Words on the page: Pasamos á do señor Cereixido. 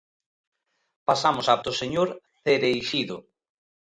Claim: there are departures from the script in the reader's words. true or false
false